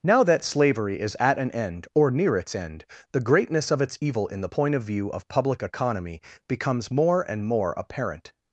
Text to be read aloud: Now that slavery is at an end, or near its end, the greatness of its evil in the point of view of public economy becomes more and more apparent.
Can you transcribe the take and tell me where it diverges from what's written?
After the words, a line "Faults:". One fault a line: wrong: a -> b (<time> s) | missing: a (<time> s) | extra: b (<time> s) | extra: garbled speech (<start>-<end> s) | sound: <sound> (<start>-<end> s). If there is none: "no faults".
Now that slavery is at an end, or near its end, the greatness of its evil in the point of view of public economy becomes more and more apparent.
Faults:
no faults